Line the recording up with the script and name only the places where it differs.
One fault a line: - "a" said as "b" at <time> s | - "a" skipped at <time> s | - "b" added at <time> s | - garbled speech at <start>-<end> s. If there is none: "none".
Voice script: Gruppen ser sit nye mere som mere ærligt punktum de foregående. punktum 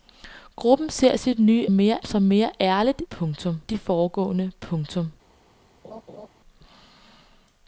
none